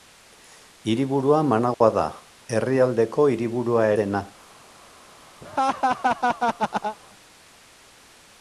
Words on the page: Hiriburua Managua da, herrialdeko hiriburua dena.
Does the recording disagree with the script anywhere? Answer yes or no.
no